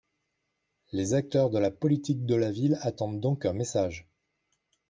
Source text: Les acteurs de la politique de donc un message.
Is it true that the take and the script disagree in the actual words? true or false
true